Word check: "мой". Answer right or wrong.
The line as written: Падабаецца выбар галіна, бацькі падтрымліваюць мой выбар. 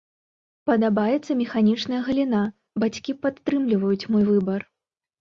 right